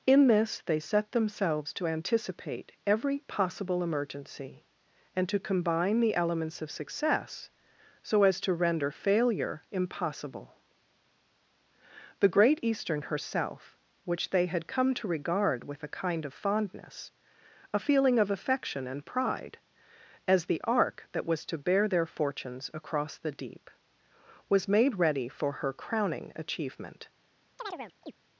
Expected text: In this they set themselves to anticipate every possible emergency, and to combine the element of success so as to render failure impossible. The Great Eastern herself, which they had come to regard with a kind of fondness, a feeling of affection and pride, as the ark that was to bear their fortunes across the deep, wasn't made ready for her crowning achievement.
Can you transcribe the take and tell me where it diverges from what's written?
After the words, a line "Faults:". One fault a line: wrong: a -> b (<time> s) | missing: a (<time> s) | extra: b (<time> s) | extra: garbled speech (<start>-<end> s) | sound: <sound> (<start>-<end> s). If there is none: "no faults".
In this they set themselves to anticipate every possible emergency, and to combine the elements of success so as to render failure impossible. The Great Eastern herself, which they had come to regard with a kind of fondness, a feeling of affection and pride, as the ark that was to bear their fortunes across the deep, was made ready for her crowning achievement.
Faults:
wrong: element -> elements (6.2 s)
wrong: wasn't -> was (24.5 s)
sound: chirp (27.6-28.1 s)